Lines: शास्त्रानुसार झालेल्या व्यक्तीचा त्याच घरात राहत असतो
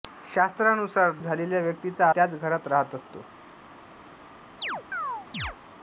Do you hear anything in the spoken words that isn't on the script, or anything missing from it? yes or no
no